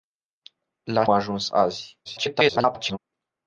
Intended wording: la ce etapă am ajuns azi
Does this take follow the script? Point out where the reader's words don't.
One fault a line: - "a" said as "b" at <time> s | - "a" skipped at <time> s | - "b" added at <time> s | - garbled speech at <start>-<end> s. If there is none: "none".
- "ce etapă am" skipped at 1.1 s
- garbled speech at 2.0-3.0 s